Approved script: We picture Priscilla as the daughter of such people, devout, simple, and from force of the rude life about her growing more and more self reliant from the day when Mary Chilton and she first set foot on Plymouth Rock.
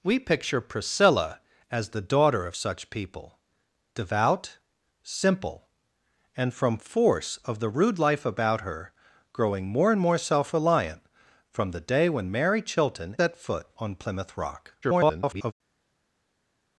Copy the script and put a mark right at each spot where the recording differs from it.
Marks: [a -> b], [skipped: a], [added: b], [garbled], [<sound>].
We picture Priscilla as the daughter of such people, devout, simple, and from force of the rude life about her growing more and more self reliant from the day when Mary Chilton [skipped: and she first] set foot on Plymouth Rock. [garbled]